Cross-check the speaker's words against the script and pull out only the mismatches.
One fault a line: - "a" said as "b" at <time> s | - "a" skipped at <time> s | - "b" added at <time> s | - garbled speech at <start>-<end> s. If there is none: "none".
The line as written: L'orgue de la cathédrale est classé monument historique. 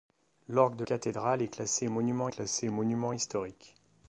- "la" skipped at 0.8 s
- "classé monument" added at 2.3 s